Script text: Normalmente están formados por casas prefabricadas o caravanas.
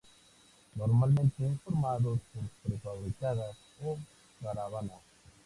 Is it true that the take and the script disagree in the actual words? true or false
true